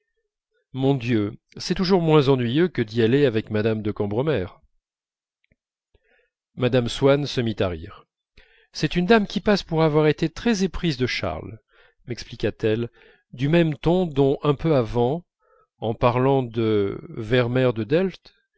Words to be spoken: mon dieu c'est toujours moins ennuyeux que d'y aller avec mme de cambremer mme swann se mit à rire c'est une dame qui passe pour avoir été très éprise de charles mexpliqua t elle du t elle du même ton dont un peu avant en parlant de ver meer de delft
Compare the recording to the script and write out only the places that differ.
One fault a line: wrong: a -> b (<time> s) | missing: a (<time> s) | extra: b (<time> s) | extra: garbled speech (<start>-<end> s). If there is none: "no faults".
missing: t elle du (13.5 s)